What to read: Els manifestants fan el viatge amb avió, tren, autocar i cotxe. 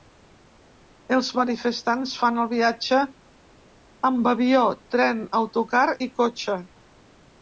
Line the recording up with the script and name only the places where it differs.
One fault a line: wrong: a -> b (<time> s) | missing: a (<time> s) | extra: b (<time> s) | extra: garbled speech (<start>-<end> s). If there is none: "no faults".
no faults